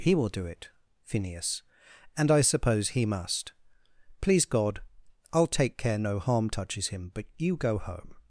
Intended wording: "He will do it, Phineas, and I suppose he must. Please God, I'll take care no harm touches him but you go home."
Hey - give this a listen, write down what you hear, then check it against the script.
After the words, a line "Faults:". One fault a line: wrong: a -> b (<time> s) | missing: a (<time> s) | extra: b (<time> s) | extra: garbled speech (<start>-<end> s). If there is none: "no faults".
"He will do it, Phineas, and I suppose he must. Please God, I'll take care no harm touches him but you go home."
Faults:
no faults